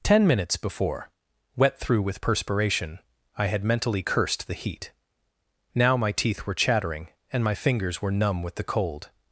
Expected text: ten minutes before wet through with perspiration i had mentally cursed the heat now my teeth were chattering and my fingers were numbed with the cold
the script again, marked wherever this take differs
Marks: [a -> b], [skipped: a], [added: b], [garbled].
ten minutes before wet through with perspiration i had mentally cursed the heat now my teeth were chattering and my fingers were [numbed -> numb] with the cold